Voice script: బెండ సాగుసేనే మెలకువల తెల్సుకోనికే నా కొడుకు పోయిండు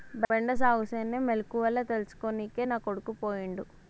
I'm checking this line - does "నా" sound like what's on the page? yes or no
yes